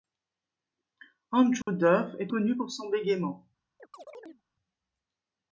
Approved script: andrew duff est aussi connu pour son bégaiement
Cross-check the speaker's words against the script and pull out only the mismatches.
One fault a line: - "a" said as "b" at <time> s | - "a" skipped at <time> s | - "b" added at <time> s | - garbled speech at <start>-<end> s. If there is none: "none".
- "aussi" skipped at 2.3 s